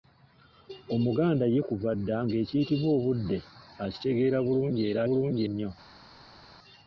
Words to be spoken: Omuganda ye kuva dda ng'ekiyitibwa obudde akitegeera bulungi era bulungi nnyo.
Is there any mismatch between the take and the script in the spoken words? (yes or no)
no